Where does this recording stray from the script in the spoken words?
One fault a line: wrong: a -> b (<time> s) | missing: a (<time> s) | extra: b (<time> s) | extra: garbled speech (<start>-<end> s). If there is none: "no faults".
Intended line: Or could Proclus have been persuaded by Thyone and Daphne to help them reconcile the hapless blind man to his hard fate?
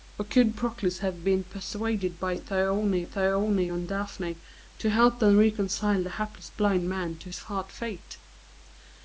extra: Thyone (3.0 s)